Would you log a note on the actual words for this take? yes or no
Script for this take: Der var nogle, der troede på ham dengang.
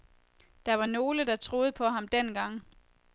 no